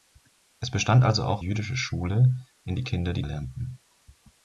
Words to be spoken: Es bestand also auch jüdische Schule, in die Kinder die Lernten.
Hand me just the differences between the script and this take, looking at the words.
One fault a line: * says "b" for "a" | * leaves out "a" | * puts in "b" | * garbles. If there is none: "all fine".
all fine